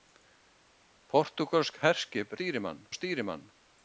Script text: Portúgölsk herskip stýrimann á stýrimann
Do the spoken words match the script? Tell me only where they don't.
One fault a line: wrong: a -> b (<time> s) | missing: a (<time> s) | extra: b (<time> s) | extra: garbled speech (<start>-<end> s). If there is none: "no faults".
no faults